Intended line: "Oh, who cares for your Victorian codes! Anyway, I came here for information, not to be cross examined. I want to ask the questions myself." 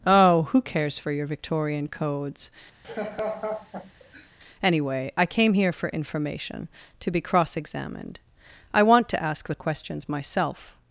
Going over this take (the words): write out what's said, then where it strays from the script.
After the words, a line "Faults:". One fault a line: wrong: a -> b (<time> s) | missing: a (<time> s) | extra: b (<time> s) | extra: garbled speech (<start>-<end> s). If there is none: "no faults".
"Oh, who cares for your Victorian codes! Anyway, I came here for information, to be cross examined. I want to ask the questions myself."
Faults:
missing: not (6.7 s)